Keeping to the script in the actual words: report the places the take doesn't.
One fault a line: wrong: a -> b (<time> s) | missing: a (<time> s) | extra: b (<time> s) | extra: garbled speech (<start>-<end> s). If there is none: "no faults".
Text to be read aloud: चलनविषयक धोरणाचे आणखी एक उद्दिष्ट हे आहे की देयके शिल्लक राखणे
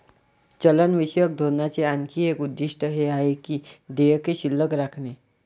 no faults